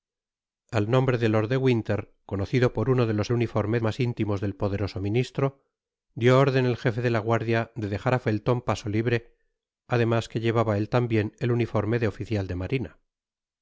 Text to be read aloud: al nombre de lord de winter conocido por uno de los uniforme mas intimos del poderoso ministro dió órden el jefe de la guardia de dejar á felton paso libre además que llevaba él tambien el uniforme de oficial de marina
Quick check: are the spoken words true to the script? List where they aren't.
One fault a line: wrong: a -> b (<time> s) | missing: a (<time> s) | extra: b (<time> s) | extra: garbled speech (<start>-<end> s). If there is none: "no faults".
no faults